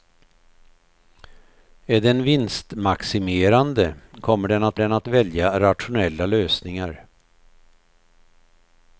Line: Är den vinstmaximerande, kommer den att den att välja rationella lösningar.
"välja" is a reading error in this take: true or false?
false